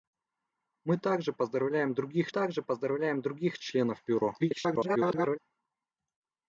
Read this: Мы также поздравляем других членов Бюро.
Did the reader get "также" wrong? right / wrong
right